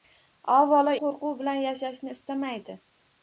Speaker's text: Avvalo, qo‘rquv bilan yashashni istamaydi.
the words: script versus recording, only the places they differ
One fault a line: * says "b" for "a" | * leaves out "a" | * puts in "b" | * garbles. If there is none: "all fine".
all fine